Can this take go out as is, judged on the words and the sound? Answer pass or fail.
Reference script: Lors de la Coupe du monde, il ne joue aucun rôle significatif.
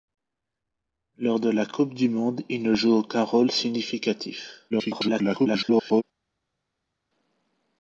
fail